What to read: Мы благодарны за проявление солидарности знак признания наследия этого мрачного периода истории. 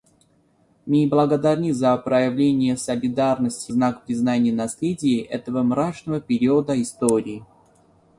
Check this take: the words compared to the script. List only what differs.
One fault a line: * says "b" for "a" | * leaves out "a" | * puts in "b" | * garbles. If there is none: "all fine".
all fine